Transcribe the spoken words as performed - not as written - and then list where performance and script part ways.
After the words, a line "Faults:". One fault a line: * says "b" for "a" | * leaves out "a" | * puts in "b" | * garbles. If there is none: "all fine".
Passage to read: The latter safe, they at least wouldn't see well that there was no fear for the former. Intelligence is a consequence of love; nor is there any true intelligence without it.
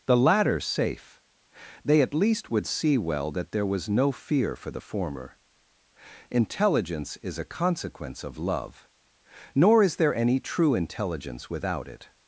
The latter safe, they at least would see well that there was no fear for the former. Intelligence is a consequence of love; nor is there any true intelligence without it.
Faults:
* says "would" for "wouldn't"